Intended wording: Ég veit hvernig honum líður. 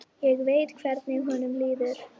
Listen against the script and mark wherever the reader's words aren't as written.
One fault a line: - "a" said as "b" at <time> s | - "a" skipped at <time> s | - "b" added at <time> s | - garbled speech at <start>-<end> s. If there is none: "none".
none